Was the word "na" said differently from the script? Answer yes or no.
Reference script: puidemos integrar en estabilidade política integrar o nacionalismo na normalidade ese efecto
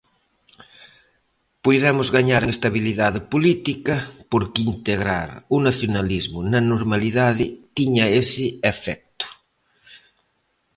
no